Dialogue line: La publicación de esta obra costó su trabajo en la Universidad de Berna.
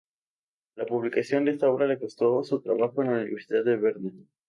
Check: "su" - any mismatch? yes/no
no